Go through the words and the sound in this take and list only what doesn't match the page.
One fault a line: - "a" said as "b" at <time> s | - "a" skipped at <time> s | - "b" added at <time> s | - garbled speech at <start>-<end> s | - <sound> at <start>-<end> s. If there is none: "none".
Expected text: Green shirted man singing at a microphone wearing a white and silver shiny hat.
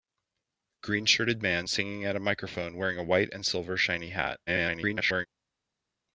- garbled speech at 4.5-5.3 s